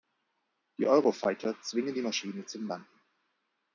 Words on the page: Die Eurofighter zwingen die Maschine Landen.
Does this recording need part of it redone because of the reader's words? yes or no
yes